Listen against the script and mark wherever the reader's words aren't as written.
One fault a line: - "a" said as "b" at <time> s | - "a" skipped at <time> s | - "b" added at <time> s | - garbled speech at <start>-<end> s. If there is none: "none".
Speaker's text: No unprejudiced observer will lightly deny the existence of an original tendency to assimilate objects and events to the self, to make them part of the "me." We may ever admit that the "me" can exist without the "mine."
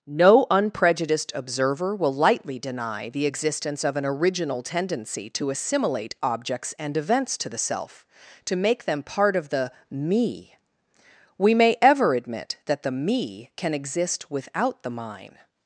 none